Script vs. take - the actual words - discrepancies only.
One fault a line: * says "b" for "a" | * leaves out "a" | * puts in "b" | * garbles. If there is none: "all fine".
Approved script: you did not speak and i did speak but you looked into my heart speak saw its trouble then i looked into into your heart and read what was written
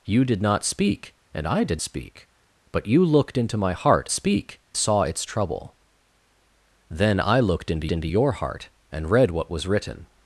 all fine